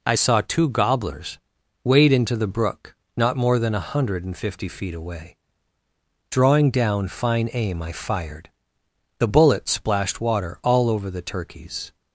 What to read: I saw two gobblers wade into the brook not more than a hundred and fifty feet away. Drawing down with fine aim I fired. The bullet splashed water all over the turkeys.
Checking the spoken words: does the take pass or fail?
fail